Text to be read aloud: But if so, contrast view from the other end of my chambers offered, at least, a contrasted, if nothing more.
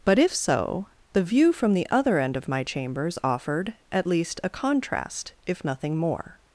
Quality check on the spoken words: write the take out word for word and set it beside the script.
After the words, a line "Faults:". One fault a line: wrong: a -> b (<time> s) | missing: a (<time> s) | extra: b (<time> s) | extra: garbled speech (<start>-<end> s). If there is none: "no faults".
But if so, the view from the other end of my chambers offered, at least, a contrast, if nothing more.
Faults:
wrong: contrast -> the (1.1 s)
wrong: contrasted -> contrast (4.5 s)